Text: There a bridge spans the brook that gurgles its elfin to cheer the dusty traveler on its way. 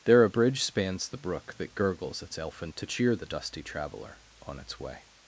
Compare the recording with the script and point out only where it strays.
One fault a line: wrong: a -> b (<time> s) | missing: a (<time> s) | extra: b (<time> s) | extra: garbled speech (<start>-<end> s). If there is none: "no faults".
no faults